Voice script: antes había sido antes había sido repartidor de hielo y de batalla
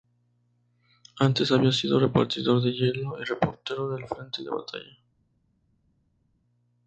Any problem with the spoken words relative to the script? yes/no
yes